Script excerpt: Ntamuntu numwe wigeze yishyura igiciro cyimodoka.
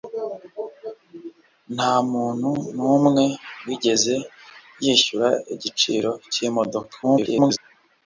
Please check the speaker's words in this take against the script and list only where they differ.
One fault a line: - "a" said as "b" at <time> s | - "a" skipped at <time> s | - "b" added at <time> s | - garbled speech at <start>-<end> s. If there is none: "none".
- garbled speech at 7.0-7.6 s